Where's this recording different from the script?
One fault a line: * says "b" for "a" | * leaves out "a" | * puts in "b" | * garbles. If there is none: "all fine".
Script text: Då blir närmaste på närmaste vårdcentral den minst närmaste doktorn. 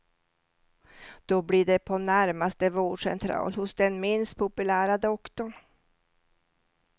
* says "det" for "närmaste"
* puts in "hos"
* says "populära" for "närmaste"